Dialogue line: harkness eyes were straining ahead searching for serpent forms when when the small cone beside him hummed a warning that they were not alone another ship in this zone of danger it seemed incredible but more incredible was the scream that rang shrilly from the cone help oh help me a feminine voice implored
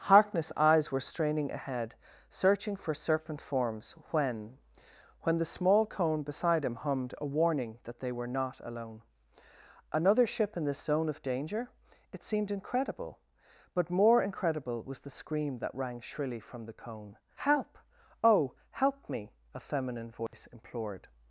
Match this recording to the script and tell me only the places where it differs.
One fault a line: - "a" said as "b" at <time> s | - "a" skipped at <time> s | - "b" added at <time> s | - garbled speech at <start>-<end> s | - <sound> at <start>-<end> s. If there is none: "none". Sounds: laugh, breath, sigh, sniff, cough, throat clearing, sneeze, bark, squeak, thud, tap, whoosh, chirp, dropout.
- dropout at 20.3-20.3 s